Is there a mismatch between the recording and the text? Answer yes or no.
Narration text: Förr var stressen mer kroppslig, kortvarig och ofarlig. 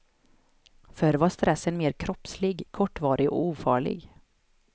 no